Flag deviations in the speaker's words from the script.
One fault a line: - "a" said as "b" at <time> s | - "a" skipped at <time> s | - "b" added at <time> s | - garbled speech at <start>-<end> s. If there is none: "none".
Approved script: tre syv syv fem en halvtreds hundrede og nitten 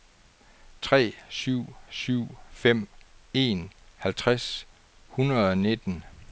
none